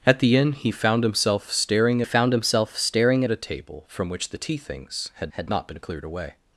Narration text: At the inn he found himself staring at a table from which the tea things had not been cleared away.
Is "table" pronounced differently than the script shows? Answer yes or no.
no